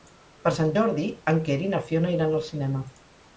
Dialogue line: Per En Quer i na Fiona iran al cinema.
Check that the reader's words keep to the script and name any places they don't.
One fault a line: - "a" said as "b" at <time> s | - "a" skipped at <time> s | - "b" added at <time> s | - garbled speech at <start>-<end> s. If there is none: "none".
- "Sant Jordi" added at 0.6 s